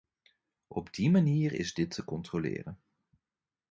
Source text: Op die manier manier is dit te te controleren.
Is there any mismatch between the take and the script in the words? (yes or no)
yes